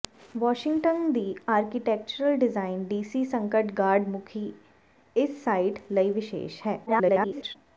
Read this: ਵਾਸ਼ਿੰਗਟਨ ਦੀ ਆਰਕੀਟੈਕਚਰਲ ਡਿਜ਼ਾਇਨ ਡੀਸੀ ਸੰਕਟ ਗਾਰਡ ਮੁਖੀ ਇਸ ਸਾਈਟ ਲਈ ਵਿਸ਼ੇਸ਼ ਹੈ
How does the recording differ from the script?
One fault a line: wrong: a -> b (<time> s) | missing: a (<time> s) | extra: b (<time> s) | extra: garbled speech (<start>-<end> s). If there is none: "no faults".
extra: garbled speech (6.9-7.6 s)